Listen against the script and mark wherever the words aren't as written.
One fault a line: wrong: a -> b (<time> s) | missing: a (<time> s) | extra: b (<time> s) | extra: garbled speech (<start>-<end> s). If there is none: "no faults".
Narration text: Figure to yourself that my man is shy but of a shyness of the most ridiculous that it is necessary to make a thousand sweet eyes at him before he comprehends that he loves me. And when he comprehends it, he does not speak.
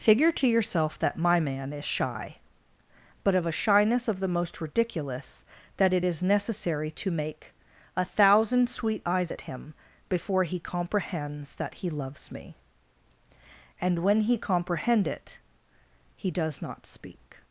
wrong: comprehends -> comprehend (14.4 s)